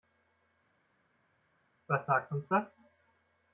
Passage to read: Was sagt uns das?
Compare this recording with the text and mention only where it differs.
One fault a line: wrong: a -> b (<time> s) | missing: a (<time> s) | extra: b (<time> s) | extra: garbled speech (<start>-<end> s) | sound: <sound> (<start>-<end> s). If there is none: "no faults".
no faults